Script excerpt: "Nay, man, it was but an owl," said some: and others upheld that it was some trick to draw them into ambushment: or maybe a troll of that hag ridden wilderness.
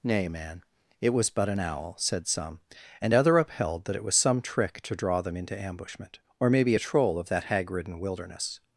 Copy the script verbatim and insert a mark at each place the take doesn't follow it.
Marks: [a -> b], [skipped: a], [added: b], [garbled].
"Nay, man, it was but an owl," said some: and [others -> other] upheld that it was some trick to draw them into ambushment: or maybe a troll of that hag ridden wilderness.